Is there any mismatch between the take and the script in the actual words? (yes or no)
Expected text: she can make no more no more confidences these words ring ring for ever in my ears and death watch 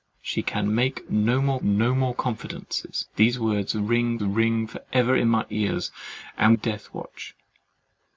no